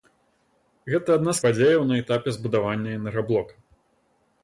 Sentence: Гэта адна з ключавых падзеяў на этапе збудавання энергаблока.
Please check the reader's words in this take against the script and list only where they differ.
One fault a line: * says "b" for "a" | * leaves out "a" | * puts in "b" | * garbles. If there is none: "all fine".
* leaves out "ключавых"